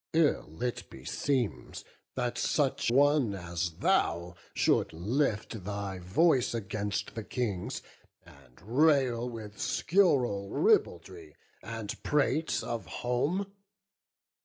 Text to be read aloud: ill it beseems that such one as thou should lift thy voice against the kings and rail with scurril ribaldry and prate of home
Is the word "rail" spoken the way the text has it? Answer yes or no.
yes